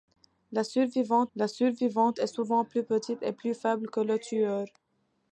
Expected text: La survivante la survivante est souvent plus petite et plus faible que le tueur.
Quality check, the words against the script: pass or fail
pass